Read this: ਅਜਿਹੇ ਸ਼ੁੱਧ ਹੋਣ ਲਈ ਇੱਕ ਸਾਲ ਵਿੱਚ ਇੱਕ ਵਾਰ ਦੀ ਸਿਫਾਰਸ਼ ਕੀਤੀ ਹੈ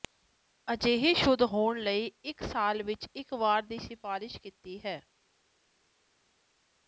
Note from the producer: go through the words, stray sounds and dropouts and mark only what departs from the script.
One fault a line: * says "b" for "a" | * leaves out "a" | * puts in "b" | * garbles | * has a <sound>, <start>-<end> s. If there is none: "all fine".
all fine